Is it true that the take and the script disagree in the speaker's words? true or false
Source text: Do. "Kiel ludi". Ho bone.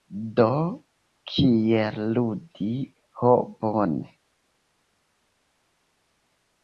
false